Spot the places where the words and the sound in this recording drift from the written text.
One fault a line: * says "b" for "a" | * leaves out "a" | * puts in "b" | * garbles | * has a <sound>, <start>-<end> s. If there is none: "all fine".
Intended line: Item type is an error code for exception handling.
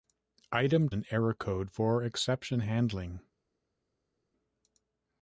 * leaves out "type is"